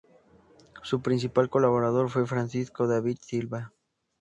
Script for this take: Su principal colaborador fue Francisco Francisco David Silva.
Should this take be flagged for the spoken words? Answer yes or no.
yes